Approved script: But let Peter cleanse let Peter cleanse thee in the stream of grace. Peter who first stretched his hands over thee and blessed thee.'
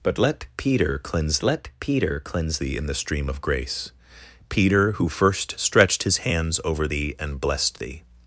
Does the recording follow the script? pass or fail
pass